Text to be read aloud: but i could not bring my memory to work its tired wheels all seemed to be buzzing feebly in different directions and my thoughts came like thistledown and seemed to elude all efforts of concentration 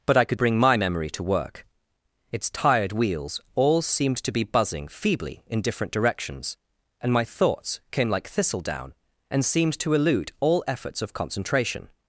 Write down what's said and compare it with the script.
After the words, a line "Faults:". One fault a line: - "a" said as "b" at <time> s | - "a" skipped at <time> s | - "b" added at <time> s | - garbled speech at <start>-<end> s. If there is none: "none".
but i could bring my memory to work its tired wheels all seemed to be buzzing feebly in different directions and my thoughts came like thistledown and seemed to elude all efforts of concentration
Faults:
- "not" skipped at 0.4 s